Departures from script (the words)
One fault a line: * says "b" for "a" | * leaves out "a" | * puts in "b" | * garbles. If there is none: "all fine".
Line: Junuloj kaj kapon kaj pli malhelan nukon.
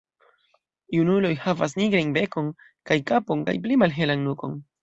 * puts in "havas nigrajn bekon"